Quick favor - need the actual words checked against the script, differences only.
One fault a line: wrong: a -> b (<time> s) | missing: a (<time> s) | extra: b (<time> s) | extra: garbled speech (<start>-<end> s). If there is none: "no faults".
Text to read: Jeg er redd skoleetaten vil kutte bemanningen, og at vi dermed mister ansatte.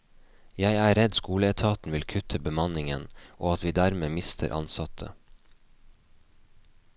no faults